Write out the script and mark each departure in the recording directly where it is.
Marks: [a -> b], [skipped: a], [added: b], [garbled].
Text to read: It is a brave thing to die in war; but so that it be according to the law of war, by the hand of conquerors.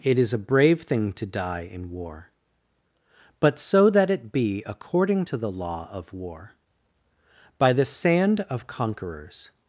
It is a brave thing to die in war; but so that it be according to the law of war, by the [hand -> sand] of conquerors.